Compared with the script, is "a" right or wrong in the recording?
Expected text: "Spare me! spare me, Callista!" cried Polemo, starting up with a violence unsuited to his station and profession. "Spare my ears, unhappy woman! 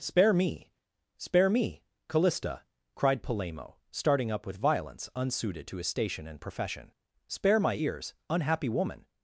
wrong